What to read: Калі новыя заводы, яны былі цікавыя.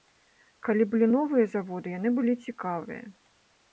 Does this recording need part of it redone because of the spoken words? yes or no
yes